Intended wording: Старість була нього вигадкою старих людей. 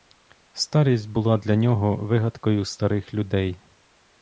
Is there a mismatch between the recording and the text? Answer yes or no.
yes